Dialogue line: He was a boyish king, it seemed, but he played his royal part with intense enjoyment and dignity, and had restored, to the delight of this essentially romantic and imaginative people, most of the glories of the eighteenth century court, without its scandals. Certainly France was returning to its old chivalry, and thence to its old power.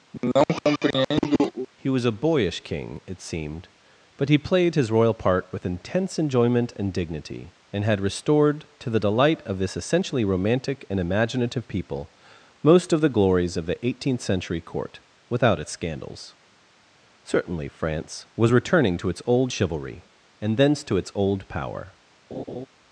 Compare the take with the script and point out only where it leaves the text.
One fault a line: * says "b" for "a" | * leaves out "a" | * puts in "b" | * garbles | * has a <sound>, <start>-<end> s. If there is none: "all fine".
* has a cough, 0.1-1.7 s
* has a laugh, 22.3-22.7 s